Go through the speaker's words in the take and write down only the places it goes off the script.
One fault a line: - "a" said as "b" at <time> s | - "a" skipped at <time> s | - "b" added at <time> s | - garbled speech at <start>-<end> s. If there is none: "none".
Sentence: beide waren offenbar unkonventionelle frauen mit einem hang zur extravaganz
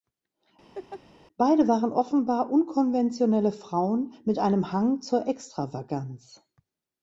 none